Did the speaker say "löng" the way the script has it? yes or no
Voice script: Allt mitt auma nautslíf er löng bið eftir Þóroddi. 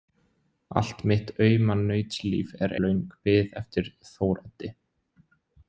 yes